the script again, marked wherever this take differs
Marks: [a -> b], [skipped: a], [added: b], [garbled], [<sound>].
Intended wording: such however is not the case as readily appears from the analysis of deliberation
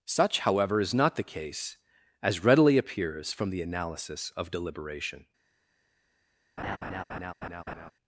such however is not the case as readily appears from the analysis of deliberation [laugh]